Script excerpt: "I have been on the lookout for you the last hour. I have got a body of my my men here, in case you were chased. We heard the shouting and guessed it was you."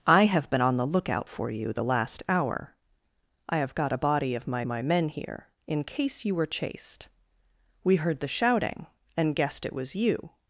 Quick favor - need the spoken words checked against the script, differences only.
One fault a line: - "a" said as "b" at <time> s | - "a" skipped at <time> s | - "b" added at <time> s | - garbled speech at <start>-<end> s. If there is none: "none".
none